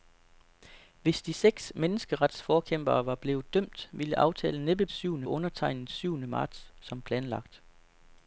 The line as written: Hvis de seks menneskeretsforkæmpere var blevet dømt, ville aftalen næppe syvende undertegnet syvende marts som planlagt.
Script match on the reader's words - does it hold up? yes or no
yes